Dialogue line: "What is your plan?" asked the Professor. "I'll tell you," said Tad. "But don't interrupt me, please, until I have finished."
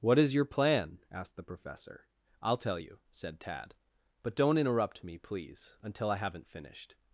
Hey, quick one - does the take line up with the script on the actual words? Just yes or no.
no